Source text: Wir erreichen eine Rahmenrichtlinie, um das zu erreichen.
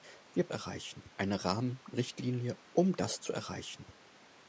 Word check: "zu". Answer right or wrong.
right